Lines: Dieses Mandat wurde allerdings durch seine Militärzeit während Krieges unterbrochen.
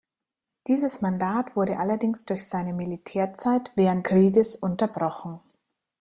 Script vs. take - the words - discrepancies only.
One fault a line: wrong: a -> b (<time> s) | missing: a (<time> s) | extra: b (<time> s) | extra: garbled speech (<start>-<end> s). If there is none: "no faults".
no faults